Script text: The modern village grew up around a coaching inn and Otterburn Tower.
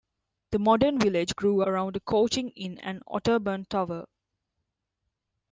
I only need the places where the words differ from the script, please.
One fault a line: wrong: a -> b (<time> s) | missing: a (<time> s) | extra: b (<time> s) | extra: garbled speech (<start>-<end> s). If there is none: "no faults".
missing: up (1.6 s)